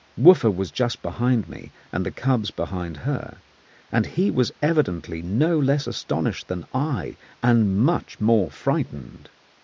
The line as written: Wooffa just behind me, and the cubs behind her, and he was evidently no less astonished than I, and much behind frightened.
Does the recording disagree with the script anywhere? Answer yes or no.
yes